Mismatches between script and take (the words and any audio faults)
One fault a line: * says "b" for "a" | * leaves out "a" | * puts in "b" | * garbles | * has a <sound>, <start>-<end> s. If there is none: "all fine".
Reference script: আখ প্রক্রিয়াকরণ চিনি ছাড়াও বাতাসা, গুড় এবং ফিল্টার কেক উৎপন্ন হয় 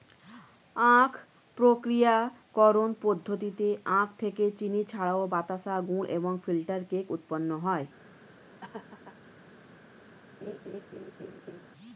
* puts in "পদ্ধতিতে আখ থেকে"
* has a laugh, 8.6-9.2 s
* has a laugh, 10.4-11.7 s